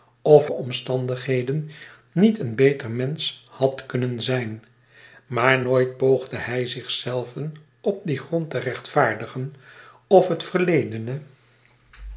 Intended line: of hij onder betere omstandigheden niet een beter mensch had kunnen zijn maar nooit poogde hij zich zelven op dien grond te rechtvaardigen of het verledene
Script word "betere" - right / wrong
wrong